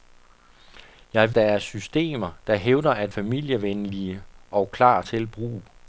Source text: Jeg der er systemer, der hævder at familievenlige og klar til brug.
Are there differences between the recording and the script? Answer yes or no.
no